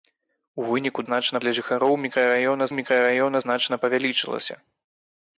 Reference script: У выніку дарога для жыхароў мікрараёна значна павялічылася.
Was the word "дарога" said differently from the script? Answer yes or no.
yes